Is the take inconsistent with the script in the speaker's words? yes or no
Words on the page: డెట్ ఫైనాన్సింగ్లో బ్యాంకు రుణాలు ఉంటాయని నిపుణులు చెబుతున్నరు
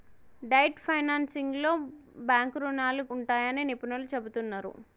no